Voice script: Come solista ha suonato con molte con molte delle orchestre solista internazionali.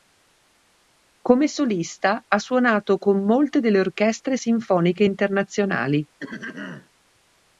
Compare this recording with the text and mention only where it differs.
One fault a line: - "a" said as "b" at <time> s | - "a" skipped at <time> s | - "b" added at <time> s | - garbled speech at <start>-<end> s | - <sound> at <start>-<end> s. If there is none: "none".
- "con molte" skipped at 3.6 s
- "solista" said as "sinfoniche" at 4.3 s
- throat clearing at 6.2-6.9 s